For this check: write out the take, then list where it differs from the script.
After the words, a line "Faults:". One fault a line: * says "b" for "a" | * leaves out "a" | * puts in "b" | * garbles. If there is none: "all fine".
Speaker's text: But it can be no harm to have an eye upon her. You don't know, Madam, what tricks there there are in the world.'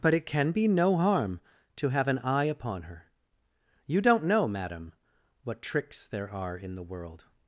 But it can be no harm to have an eye upon her. You don't know, Madam, what tricks there are in the world.'
Faults:
* leaves out "there"